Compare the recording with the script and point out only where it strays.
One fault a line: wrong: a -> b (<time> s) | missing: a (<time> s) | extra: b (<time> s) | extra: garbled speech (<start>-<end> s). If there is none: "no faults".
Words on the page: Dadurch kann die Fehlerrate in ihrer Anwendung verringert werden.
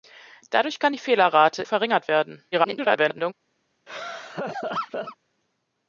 missing: in ihrer Anwendung (1.6 s)
extra: garbled speech (2.5-3.3 s)